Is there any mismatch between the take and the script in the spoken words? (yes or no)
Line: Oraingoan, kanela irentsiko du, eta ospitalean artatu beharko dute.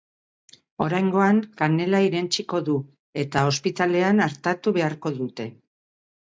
no